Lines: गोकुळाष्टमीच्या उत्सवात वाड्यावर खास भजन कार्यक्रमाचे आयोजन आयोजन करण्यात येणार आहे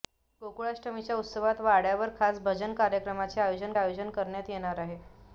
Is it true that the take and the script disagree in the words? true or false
false